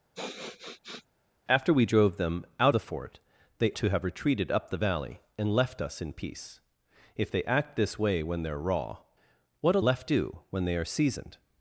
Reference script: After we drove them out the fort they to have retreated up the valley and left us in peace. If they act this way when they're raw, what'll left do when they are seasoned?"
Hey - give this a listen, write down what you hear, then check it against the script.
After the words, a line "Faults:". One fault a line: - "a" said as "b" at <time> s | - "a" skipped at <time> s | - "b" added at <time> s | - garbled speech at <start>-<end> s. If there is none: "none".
After we drove them out the fort they to have retreated up the valley and left us in peace. If they act this way when they're raw, what'll left do when they are seasoned?"
Faults:
none